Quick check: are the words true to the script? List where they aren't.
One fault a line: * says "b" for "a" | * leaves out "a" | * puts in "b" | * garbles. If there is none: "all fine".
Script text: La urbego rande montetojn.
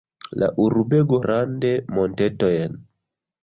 all fine